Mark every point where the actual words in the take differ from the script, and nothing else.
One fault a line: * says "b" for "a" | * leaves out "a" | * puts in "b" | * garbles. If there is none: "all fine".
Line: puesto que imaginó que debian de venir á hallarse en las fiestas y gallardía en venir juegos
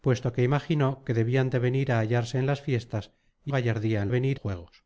all fine